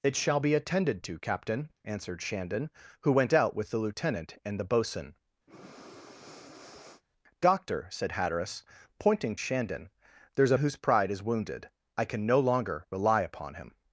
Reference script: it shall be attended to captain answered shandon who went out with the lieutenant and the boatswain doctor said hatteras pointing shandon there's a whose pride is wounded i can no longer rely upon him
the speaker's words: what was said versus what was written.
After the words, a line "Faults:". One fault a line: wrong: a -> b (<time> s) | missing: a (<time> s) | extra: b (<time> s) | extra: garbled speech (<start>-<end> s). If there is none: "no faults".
it shall be attended to captain answered shandon who went out with the lieutenant and the boatswain doctor said hatteras pointing shandon there's a whose pride is wounded i can no longer rely upon him
Faults:
no faults